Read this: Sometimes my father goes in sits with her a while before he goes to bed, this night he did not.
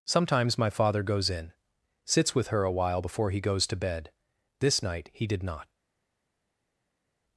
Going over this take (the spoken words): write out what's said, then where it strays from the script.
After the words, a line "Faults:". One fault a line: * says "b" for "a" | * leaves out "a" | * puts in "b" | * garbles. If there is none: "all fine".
Sometimes my father goes in sits with her a while before he goes to bed, this night he did not.
Faults:
all fine